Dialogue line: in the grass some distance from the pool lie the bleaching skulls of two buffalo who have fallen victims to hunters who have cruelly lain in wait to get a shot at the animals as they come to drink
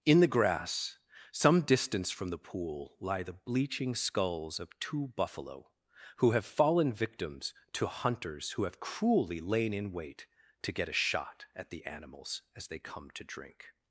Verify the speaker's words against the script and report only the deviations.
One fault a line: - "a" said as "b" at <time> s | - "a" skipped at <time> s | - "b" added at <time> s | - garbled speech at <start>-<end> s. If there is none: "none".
none